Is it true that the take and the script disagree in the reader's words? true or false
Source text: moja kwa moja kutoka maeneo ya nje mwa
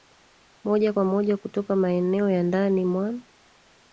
true